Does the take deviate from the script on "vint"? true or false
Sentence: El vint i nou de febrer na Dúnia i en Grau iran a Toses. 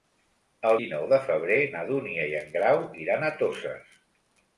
true